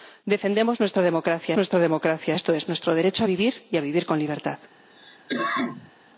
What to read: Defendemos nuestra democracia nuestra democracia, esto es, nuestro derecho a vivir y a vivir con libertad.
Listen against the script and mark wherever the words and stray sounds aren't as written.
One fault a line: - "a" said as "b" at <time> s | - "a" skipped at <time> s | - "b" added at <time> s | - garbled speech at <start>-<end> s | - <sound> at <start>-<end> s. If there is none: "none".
- cough at 4.9-5.9 s